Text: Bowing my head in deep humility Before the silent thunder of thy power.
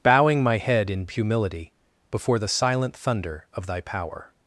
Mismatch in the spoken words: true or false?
true